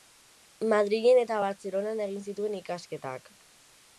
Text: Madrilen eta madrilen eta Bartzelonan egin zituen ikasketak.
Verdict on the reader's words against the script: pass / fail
fail